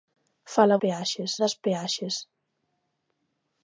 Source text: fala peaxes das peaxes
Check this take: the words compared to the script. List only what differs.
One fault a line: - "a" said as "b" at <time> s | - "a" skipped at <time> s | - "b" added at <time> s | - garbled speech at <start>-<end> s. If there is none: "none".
none